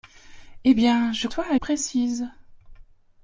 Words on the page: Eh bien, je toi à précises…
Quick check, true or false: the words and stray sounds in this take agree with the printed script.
true